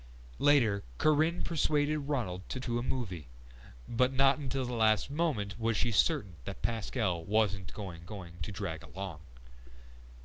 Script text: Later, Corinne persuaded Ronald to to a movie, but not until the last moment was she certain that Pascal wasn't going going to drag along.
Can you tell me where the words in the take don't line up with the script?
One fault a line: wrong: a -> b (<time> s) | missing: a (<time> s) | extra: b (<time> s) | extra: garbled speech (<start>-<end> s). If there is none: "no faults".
no faults